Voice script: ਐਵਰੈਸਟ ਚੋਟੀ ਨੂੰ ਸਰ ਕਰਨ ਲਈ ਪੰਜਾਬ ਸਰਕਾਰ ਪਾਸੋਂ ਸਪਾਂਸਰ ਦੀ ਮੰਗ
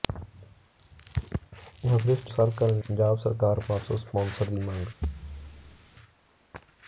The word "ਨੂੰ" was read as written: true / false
false